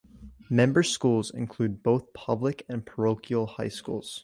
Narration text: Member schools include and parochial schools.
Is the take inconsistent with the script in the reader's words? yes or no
yes